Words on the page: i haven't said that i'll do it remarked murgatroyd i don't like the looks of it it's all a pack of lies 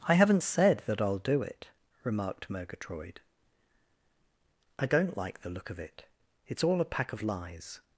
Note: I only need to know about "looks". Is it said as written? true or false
false